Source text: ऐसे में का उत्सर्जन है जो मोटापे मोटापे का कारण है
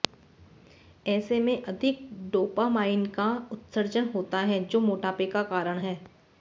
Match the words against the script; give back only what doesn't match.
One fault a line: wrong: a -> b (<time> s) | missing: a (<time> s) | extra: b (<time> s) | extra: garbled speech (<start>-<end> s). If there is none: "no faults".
extra: अधिक डोपामाइन (1.6 s)
extra: होता (4.2 s)
missing: मोटापे (5.2 s)